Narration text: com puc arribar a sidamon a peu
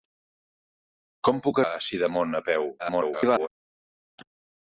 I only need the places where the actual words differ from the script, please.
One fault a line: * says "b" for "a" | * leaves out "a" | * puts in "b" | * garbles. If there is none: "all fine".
* leaves out "arribar"
* garbles